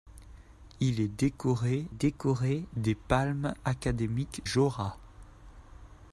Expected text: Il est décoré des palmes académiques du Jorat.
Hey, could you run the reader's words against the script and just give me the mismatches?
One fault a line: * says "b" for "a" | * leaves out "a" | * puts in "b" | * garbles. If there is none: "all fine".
* puts in "décoré"
* leaves out "du"